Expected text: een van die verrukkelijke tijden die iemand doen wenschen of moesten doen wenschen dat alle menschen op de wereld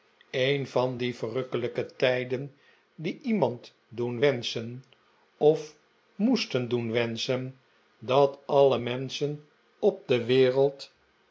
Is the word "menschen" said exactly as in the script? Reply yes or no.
yes